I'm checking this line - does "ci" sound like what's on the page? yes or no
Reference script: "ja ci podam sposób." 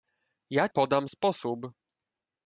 no